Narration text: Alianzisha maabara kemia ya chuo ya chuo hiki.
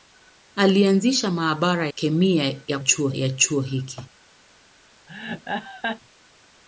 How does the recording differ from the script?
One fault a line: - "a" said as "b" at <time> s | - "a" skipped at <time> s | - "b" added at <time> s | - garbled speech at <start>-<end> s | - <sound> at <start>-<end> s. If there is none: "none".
- laugh at 5.1-6.0 s